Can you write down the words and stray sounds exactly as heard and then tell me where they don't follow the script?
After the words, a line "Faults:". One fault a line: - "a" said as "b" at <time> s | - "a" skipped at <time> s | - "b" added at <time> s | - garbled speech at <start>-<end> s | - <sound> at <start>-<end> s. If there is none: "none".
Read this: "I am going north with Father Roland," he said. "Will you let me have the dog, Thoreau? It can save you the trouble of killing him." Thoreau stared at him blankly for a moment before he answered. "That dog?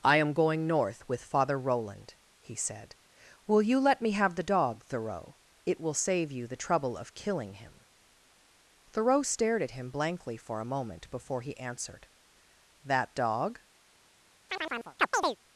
"I am going north with Father Roland," he said. "Will you let me have the dog, Thoreau? It will save you the trouble of killing him." Thoreau stared at him blankly for a moment before he answered. "That dog?
Faults:
- "can" said as "will" at 5.8 s
- chirp at 14.5-15.4 s